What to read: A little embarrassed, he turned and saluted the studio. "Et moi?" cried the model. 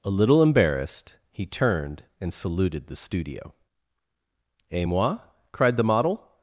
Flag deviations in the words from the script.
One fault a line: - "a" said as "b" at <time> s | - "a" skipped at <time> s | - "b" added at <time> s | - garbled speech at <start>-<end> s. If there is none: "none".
none